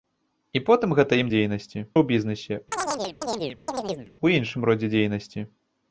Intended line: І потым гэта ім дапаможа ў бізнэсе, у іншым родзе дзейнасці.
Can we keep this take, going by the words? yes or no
no